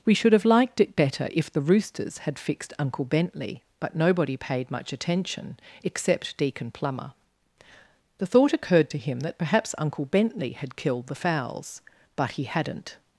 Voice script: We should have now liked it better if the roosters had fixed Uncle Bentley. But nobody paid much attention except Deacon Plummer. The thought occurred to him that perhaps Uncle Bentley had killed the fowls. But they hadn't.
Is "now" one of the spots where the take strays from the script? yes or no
yes